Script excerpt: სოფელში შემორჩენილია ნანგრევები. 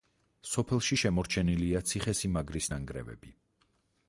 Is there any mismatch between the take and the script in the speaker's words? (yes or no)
yes